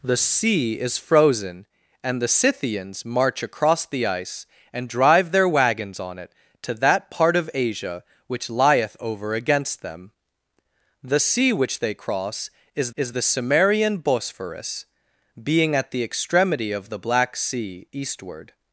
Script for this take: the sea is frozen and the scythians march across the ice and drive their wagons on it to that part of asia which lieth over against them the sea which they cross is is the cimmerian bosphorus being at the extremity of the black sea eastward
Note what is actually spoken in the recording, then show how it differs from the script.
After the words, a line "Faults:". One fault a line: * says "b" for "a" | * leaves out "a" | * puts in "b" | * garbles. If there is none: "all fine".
the sea is frozen and the scythians march across the ice and drive their wagons on it to that part of asia which lieth over against them the sea which they cross is is the cimmerian bosphorus being at the extremity of the black sea eastward
Faults:
all fine